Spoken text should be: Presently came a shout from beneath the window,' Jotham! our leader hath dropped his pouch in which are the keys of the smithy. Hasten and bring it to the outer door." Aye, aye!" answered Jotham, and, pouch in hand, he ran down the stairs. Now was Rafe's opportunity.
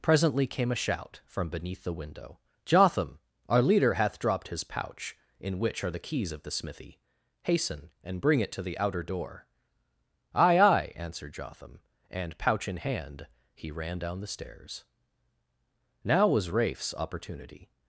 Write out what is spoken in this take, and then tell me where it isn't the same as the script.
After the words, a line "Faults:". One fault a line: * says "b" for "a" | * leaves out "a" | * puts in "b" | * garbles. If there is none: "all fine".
Presently came a shout from beneath the window,' Jotham! our leader hath dropped his pouch in which are the keys of the smithy. Hasten and bring it to the outer door." Aye, aye!" answered Jotham, and, pouch in hand, he ran down the stairs. Now was Rafe's opportunity.
Faults:
all fine